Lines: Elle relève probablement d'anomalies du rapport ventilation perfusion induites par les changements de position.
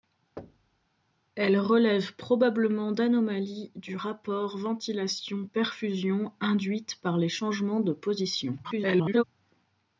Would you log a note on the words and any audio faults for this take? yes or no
yes